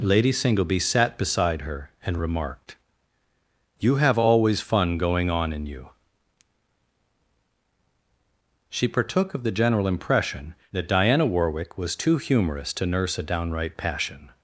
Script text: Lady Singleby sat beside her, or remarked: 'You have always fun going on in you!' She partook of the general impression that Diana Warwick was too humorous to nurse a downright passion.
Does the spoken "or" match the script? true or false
false